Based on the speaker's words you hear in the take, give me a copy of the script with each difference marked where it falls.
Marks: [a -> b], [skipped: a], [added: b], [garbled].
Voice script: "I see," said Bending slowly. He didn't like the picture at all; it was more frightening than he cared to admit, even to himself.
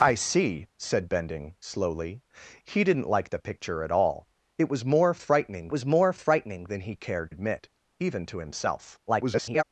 "I see," said Bending slowly. He didn't like the picture at all; it was more frightening [added: was more frightening] than he cared [skipped: to] admit, even to himself. [garbled]